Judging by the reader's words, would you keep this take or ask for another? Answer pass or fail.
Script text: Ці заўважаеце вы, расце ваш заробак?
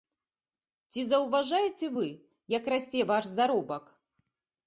fail